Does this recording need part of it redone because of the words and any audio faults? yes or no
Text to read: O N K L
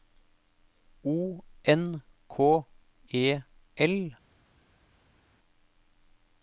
yes